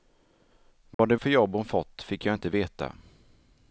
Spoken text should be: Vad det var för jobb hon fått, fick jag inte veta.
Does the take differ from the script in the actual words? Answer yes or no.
yes